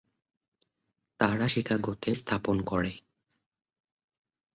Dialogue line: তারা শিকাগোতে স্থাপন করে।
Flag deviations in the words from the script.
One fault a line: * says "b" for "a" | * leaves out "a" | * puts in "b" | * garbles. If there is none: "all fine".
all fine